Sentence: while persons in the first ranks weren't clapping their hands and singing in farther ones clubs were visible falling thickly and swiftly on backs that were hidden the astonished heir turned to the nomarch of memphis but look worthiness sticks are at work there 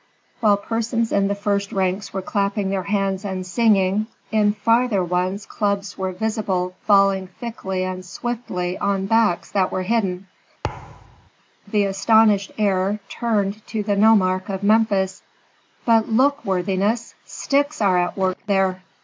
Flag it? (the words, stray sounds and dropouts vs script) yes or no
yes